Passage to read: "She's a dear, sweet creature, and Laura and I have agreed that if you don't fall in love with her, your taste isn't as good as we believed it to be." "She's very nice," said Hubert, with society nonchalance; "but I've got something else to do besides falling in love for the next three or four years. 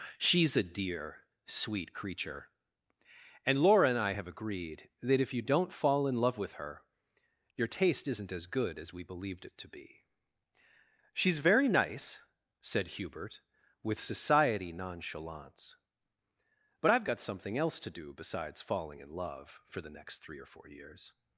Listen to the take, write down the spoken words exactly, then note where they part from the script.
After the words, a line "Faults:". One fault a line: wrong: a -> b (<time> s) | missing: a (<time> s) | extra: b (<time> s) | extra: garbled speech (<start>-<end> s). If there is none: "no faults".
"She's a dear, sweet creature, and Laura and I have agreed that if you don't fall in love with her, your taste isn't as good as we believed it to be." "She's very nice," said Hubert, with society nonchalance; "but I've got something else to do besides falling in love for the next three or four years.
Faults:
no faults